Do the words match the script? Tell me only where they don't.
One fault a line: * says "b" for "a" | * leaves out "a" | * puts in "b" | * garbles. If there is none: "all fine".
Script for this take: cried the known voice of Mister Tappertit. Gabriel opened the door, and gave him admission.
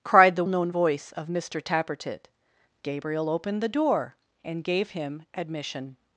all fine